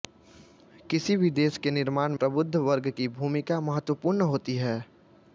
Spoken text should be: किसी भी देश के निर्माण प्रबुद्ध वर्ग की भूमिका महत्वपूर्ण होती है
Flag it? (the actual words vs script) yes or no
no